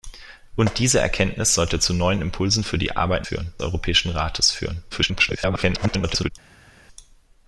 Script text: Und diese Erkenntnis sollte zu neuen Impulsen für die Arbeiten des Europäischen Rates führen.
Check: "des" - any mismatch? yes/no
yes